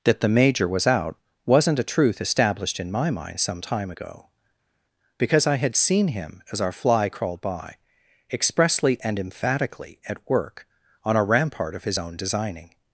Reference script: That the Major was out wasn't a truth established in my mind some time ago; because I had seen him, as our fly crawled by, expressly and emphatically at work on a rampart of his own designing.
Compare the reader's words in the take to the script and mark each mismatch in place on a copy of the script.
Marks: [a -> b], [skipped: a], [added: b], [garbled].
That the Major was out wasn't a truth established in my mind some time ago; because I had seen him, as our fly crawled by, expressly and emphatically at work on a rampart of his own designing.